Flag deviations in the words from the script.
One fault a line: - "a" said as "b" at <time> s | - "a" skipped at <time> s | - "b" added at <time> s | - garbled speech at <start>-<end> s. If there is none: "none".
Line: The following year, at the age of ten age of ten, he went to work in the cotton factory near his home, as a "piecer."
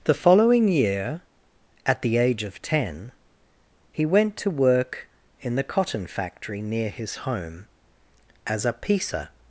- "age of ten" skipped at 3.1 s